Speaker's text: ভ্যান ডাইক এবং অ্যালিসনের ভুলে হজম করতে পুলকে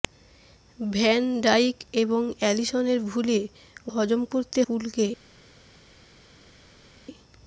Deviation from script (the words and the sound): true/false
false